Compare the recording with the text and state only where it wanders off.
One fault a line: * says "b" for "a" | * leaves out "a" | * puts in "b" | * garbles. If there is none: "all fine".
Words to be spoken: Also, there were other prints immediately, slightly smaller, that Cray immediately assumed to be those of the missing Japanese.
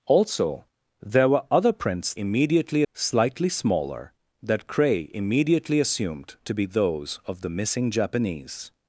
all fine